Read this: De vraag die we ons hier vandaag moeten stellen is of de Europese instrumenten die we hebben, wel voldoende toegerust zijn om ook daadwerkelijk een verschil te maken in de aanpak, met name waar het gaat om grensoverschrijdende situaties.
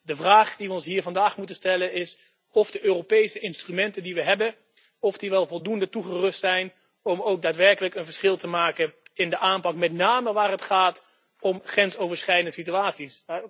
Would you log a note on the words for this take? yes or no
no